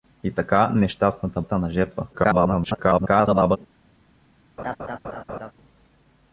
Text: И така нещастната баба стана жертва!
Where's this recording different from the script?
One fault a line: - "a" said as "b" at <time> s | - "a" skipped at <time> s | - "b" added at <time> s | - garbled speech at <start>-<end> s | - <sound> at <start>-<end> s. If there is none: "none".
- "баба" skipped at 1.4 s
- garbled speech at 2.1-3.6 s
- laugh at 4.6-5.5 s